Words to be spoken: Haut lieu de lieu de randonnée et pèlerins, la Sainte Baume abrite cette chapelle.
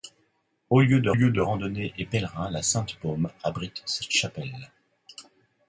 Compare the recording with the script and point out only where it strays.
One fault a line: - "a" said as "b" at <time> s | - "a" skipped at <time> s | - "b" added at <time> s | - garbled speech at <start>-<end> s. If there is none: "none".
none